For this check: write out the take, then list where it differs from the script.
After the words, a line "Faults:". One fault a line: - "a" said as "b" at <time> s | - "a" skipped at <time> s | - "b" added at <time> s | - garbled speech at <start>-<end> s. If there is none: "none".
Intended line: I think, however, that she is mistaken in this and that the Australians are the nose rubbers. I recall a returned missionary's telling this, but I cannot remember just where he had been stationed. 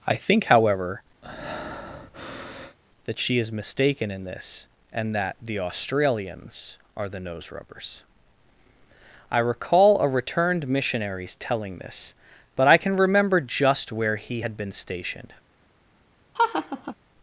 I think, however, that she is mistaken in this and that the Australians are the nose rubbers. I recall a returned missionary's telling this, but I can remember just where he had been stationed.
Faults:
- "cannot" said as "can" at 12.8 s